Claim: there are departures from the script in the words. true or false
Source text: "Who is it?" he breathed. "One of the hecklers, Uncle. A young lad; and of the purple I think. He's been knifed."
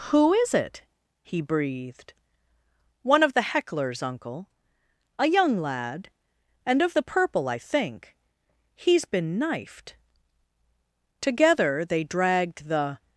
true